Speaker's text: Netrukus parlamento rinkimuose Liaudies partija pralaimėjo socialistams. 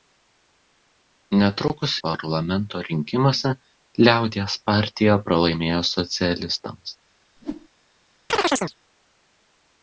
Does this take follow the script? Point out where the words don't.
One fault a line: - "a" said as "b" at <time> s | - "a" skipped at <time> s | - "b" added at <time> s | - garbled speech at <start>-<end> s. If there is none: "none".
none